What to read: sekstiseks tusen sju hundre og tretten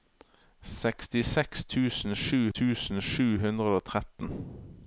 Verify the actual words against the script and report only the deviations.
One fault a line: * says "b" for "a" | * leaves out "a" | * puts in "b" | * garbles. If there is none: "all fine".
* puts in "tusen sju"